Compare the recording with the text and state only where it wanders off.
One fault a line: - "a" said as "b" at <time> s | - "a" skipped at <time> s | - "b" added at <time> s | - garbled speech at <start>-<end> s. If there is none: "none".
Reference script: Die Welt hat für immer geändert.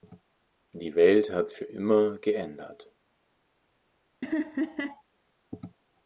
none